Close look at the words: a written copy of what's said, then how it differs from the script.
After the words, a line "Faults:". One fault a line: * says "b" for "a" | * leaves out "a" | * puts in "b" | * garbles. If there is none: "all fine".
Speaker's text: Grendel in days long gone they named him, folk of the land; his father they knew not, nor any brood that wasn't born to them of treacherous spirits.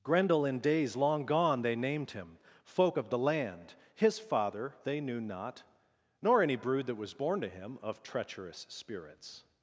Grendel in days long gone they named him, folk of the land; his father they knew not, nor any brood that was born to him of treacherous spirits.
Faults:
* says "was" for "wasn't"
* says "him" for "them"